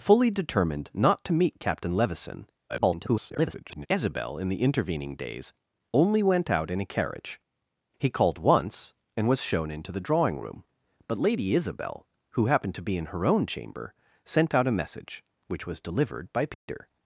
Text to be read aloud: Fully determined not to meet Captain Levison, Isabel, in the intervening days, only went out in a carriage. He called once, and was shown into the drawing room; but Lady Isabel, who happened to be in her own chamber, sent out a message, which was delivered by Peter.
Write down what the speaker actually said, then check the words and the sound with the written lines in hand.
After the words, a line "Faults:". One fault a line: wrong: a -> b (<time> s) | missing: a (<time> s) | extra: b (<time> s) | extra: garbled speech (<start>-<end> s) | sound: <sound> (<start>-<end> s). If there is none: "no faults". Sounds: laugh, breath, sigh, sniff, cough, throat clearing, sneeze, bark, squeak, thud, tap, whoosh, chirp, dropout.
Fully determined not to meet Captain Levison, [garbled] Isabel, in the intervening days, only went out in a carriage. He called once, and was shown into the drawing room; but Lady Isabel, who happened to be in her own chamber, sent out a message, which was delivered by Peter.
Faults:
extra: garbled speech (2.7-3.9 s)
sound: dropout (16.5-16.7 s)